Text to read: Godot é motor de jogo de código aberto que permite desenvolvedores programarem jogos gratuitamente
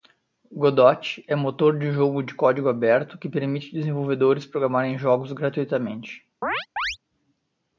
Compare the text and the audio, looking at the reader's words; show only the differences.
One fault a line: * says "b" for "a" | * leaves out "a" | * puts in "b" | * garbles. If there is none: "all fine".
all fine